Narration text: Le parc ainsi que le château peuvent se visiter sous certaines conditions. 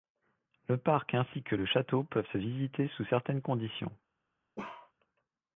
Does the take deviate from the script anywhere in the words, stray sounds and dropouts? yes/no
yes